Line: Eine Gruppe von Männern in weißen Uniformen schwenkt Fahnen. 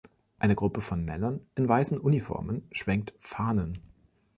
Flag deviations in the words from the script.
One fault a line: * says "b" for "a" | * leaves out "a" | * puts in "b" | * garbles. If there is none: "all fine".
all fine